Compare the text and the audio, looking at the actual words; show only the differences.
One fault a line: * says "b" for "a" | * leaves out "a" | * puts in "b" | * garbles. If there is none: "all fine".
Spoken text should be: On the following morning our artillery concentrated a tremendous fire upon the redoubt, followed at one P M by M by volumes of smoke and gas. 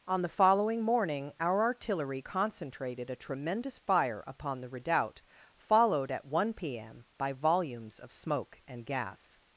* leaves out "M by"